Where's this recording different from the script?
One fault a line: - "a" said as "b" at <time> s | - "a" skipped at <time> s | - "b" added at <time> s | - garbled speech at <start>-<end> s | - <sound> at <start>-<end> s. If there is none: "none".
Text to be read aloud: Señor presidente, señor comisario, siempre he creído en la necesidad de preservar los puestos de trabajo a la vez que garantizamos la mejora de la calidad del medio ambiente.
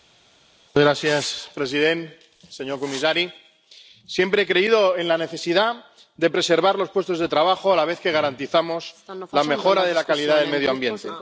none